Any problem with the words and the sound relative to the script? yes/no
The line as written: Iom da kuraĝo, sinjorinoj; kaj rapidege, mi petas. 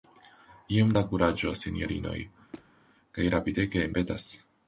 yes